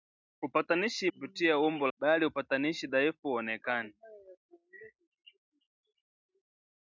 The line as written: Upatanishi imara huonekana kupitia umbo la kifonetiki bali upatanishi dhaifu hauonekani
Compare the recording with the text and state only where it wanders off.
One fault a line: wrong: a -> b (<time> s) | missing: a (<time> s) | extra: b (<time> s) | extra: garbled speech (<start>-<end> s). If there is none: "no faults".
missing: imara huonekana (1.1 s)
missing: la kifonetiki (1.9 s)